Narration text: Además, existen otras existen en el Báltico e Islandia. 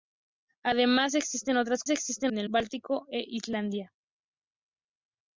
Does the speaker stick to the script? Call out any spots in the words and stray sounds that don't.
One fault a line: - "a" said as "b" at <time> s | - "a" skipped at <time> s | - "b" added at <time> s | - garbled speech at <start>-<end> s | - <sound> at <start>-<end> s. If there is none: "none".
none